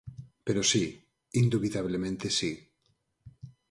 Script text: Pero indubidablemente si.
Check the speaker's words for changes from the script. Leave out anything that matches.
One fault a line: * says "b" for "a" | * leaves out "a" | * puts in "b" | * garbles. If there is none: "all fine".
* puts in "si"